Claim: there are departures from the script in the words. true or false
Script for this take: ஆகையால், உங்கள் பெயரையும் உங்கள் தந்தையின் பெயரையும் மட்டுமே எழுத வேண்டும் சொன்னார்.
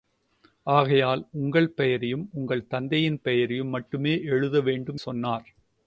false